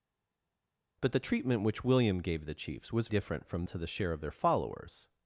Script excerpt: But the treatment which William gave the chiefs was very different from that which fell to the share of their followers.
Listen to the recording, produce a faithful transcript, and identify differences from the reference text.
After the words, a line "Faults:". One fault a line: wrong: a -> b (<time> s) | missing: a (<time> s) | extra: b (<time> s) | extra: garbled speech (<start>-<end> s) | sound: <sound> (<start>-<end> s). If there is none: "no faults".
But the treatment which William gave the chiefs was different from to the share of their followers.
Faults:
missing: very (3.1 s)
missing: that which fell (3.7 s)